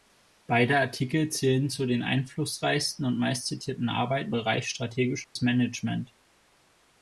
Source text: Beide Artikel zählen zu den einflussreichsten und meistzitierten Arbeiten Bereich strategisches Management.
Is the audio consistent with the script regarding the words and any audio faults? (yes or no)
no